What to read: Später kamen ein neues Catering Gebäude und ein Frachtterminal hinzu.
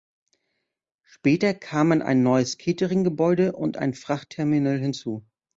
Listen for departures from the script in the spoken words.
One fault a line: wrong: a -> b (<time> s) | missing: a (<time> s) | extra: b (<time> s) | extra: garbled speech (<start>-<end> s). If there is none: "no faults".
no faults